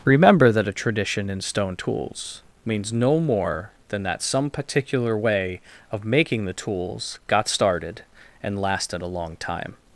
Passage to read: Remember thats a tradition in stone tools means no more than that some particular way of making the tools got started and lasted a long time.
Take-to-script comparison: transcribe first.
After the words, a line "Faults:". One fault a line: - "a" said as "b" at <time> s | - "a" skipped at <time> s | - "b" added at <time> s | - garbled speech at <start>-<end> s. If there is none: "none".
Remember that a tradition in stone tools means no more than that some particular way of making the tools got started and lasted a long time.
Faults:
- "thats" said as "that" at 0.5 s